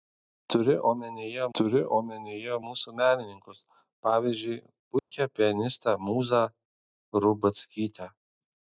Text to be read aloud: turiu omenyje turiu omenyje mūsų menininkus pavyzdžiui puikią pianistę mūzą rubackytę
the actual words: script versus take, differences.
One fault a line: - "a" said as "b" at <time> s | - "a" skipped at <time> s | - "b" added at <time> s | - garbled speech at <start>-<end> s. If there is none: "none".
none